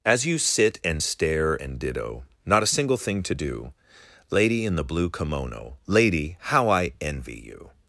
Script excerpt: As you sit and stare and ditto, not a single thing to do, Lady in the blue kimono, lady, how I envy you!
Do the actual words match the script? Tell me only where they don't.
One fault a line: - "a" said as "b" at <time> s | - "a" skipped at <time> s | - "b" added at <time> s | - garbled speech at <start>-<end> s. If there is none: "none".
none